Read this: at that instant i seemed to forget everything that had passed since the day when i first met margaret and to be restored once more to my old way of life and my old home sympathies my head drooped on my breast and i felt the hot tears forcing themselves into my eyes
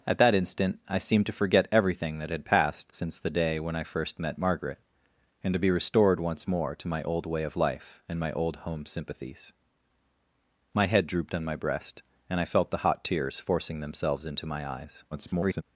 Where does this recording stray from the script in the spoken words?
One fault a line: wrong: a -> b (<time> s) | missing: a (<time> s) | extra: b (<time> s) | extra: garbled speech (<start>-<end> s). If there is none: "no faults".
extra: garbled speech (15.1-15.6 s)